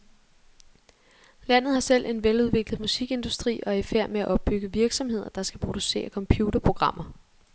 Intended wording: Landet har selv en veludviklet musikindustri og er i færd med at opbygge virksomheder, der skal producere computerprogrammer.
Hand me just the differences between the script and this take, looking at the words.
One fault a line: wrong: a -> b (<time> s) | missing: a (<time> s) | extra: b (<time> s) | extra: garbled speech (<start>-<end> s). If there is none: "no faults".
no faults